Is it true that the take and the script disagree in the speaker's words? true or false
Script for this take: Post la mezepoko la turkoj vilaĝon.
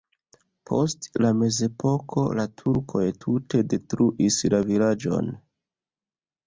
true